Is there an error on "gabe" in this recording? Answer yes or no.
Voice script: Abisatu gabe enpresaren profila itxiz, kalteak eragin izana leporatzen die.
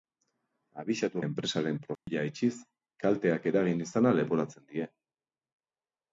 yes